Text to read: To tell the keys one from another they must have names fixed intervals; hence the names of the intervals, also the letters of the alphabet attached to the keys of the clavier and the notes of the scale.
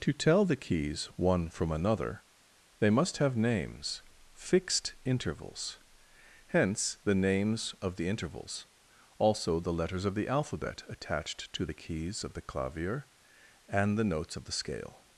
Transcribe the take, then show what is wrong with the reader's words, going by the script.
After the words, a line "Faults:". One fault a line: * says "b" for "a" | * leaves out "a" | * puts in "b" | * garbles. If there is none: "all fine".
To tell the keys one from another they must have names fixed intervals; hence the names of the intervals, also the letters of the alphabet attached to the keys of the clavier and the notes of the scale.
Faults:
all fine